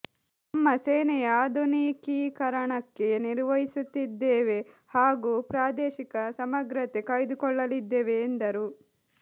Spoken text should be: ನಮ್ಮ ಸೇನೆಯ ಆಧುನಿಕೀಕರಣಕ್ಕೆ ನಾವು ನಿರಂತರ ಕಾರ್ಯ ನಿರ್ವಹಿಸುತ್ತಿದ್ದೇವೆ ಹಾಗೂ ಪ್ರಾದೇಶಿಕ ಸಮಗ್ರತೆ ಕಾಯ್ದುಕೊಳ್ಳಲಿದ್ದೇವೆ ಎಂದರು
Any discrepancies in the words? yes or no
yes